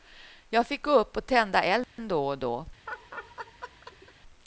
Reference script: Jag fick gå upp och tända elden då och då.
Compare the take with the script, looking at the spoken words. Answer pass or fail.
pass